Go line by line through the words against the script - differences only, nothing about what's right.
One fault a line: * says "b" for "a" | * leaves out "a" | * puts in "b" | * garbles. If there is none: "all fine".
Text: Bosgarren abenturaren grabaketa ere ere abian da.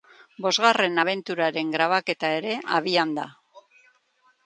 * leaves out "ere"